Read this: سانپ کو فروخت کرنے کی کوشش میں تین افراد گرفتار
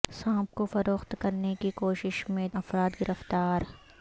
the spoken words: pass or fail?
fail